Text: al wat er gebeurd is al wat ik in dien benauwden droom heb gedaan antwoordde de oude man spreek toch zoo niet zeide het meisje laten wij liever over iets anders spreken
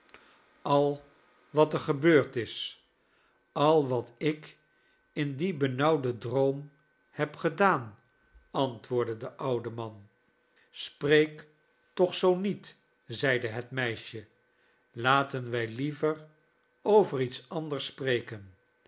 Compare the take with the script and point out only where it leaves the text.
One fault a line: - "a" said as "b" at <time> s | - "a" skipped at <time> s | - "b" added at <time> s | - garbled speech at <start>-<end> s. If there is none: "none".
none